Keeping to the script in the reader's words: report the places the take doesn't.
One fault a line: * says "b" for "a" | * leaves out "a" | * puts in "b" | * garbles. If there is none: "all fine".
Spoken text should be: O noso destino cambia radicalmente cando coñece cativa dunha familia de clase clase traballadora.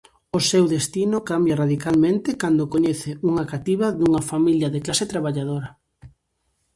* says "seu" for "noso"
* puts in "unha"
* leaves out "clase"